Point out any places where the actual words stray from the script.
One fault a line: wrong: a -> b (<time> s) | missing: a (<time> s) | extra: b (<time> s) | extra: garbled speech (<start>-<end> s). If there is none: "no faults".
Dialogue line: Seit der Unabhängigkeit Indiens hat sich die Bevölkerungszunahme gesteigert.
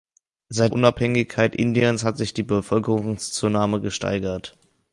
missing: der (0.7 s)